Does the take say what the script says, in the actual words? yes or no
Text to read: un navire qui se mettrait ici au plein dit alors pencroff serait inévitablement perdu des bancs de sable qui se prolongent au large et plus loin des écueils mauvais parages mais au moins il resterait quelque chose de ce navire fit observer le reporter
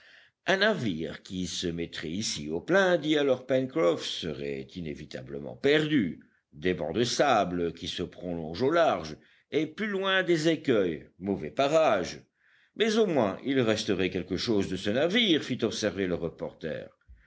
yes